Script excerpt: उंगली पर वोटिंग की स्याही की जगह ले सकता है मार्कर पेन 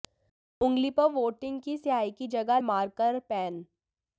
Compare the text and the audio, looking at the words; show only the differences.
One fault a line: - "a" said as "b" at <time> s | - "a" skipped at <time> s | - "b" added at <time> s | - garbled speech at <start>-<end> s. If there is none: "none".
- "ले सकता है" skipped at 2.6 s